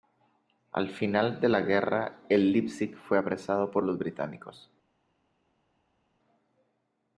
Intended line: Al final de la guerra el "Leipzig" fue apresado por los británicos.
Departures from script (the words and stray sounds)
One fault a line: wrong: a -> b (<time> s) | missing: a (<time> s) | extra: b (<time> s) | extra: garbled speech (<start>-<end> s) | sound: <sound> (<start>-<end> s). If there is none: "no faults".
no faults